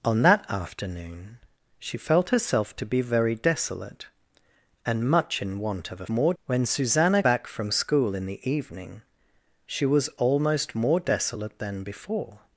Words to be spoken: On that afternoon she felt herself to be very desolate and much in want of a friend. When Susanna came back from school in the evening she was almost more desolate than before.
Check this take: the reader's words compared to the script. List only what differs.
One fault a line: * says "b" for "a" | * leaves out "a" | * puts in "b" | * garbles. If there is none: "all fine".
* says "more" for "friend"
* leaves out "came"